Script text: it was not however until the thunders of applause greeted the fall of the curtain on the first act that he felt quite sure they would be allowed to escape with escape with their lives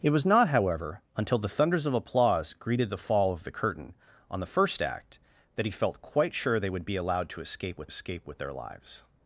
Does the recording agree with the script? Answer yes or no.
yes